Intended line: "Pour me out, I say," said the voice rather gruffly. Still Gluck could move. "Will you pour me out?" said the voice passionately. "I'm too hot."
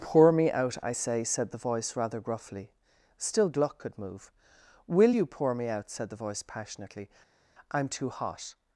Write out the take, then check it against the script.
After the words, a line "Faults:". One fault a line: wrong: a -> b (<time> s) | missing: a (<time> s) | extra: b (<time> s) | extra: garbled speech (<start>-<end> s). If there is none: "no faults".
"Pour me out, I say," said the voice rather gruffly. Still Gluck could move. "Will you pour me out?" said the voice passionately. "I'm too hot."
Faults:
no faults